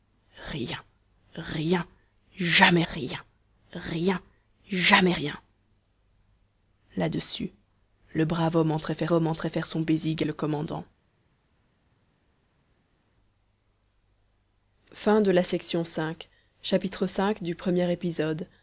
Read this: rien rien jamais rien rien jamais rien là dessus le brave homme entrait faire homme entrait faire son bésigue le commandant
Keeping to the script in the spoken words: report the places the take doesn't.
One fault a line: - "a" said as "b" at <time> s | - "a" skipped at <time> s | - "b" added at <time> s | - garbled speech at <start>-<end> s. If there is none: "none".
none